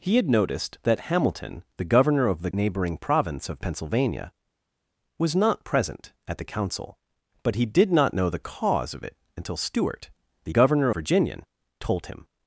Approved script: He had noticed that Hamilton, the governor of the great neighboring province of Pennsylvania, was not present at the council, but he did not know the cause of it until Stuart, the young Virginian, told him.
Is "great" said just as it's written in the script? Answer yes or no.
no